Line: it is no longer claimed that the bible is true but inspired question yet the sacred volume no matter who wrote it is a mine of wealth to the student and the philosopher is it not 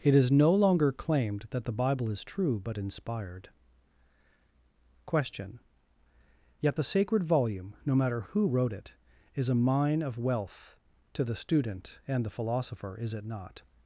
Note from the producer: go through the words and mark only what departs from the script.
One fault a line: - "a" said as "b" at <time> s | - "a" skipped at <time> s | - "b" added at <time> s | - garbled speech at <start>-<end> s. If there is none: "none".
none